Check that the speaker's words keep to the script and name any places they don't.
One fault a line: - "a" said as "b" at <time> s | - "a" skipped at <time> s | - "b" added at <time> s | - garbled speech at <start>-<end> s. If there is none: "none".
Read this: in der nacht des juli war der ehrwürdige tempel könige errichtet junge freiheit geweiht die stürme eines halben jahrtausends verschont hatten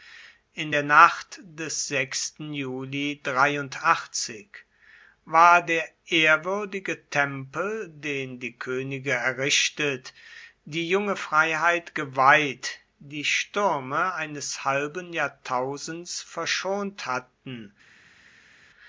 - "den die" added at 7.9 s
- "die" added at 10.6 s